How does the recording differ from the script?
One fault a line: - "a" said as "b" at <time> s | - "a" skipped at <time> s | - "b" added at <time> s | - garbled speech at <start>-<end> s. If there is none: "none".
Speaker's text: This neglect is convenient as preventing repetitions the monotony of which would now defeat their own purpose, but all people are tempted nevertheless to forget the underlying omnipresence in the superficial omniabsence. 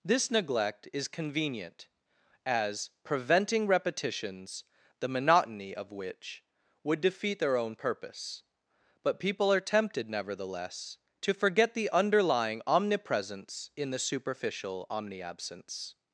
- "now" skipped at 7.0 s
- "all" skipped at 9.2 s